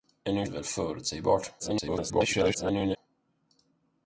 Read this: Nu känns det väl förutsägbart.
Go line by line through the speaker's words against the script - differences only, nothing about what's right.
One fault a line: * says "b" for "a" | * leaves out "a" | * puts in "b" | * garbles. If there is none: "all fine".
* leaves out "känns"
* garbles